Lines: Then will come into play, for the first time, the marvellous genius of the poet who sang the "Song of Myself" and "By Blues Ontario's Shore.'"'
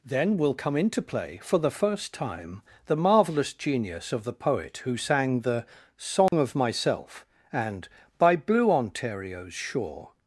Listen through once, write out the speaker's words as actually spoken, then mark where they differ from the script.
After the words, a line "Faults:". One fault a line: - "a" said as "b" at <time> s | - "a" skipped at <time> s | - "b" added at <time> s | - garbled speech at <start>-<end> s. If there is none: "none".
Then will come into play, for the first time, the marvellous genius of the poet who sang the "Song of Myself" and "By Blue Ontario's Shore.'"'
Faults:
- "Blues" said as "Blue" at 8.4 s